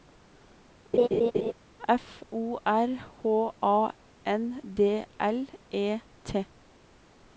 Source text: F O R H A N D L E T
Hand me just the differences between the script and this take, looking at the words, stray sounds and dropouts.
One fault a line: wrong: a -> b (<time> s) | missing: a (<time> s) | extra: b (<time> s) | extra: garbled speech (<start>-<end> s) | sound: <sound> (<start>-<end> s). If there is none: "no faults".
sound: laugh (0.9-1.5 s)